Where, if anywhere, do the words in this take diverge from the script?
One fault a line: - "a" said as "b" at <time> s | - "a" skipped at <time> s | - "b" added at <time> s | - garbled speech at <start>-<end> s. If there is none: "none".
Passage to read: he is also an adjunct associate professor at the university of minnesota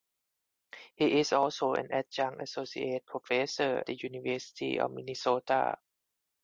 - "at" skipped at 3.8 s